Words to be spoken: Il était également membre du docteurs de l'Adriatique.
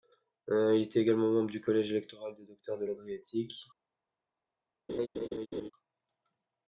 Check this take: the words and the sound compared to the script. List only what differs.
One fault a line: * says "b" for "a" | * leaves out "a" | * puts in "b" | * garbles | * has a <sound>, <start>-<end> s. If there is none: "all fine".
* puts in "collège électoral des"
* has a laugh, 4.9-5.7 s